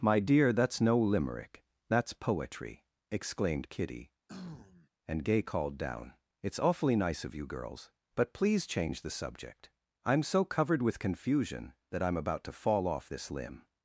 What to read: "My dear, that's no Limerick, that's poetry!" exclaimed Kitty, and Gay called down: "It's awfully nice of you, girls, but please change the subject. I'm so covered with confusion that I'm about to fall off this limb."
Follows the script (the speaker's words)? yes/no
yes